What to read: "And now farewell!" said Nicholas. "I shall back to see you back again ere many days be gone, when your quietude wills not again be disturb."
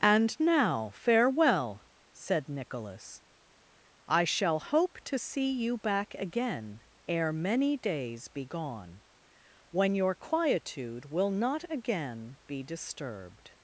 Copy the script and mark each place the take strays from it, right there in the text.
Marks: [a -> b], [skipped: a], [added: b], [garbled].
"And now farewell!" said Nicholas. "I shall [back -> hope] to see you back again ere many days be gone, when your quietude [wills -> will] not again be [disturb." -> disturbed]